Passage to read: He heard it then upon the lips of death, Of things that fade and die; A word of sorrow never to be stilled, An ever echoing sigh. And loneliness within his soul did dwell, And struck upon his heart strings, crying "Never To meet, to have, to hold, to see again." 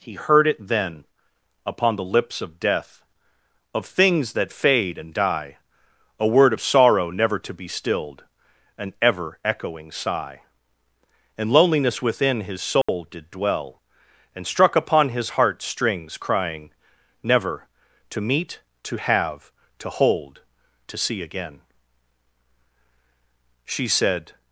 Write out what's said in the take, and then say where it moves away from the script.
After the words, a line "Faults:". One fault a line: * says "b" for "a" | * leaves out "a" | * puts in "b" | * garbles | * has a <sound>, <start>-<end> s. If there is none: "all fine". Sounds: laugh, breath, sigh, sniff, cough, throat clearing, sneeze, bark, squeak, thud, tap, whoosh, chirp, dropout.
He heard it then upon the lips of death, Of things that fade and die; A word of sorrow never to be stilled, An ever echoing sigh. And loneliness within his soul did dwell, And struck upon his heart strings, crying "Never To meet, to have, to hold, to see again." She said
Faults:
* has a dropout, 12.8-12.9 s
* puts in "She said"